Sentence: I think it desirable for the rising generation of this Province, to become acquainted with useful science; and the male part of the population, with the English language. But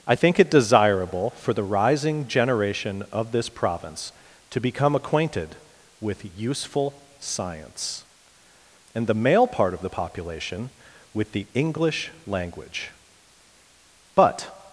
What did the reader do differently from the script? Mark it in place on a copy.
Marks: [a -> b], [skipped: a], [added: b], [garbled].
I think it desirable for the rising generation of this Province, to become acquainted with useful science; and the male part of the population, with the English language. But